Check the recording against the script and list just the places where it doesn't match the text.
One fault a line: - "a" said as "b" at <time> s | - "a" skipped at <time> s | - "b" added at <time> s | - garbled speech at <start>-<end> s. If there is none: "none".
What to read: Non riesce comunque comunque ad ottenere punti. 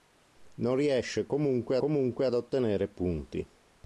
none